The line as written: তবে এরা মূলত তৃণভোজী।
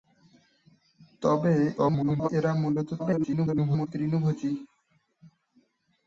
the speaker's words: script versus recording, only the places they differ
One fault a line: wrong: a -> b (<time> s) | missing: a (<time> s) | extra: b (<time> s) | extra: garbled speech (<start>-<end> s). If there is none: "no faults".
extra: garbled speech (1.8-2.3 s)
extra: garbled speech (3.0-3.9 s)